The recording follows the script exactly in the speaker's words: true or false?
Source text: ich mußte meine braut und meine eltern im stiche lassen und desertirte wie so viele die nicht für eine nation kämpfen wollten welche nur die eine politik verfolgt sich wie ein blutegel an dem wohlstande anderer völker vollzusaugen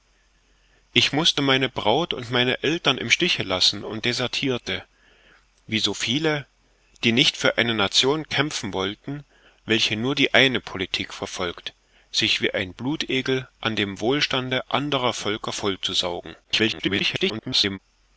false